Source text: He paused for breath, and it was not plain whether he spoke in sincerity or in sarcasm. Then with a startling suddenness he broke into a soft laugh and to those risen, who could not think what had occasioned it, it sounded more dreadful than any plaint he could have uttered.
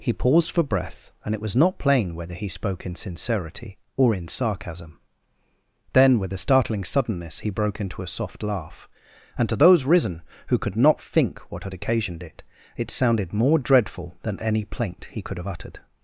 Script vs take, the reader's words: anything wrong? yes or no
no